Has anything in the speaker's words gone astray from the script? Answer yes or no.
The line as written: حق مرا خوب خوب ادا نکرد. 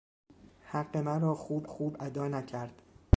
no